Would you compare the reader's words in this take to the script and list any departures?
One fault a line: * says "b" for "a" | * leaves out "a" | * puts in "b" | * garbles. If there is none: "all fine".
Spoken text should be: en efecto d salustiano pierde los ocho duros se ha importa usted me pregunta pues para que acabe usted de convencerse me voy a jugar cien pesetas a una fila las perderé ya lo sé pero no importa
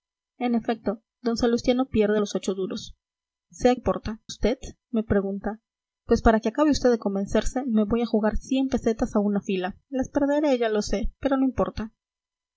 all fine